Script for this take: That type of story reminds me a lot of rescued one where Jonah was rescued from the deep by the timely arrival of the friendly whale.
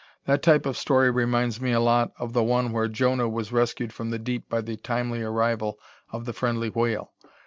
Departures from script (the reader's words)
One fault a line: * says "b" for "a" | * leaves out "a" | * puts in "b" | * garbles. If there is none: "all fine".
* says "the" for "rescued"